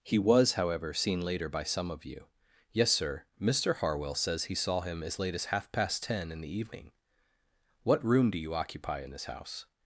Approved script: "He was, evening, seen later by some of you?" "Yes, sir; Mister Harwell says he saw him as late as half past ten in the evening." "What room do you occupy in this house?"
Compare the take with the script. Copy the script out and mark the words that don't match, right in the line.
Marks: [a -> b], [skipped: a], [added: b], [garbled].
"He was, [evening, -> however] seen later by some of you?" "Yes, sir; Mister Harwell says he saw him as late as half past ten in the evening." "What room do you occupy in this house?"